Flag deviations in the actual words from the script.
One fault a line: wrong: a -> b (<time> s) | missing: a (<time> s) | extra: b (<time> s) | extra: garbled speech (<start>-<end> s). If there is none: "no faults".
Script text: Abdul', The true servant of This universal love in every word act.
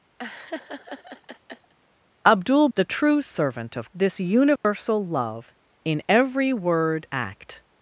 no faults